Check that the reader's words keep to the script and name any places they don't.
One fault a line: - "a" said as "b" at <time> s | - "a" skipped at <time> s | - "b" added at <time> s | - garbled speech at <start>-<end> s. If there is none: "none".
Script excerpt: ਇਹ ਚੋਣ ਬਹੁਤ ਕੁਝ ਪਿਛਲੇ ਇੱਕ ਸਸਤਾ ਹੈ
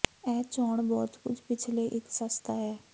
none